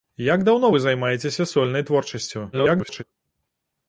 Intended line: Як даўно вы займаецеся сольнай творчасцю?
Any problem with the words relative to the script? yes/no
yes